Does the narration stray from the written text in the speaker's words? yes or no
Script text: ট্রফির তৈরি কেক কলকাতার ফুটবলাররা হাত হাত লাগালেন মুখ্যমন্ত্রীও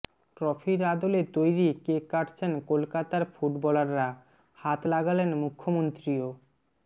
yes